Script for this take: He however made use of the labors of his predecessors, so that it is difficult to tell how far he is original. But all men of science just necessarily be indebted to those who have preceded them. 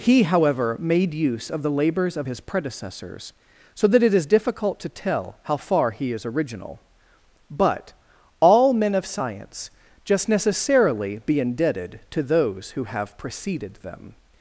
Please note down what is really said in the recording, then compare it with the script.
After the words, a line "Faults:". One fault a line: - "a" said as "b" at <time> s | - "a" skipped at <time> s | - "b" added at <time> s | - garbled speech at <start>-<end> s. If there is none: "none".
He however made use of the labors of his predecessors, so that it is difficult to tell how far he is original. But all men of science just necessarily be indebted to those who have preceded them.
Faults:
none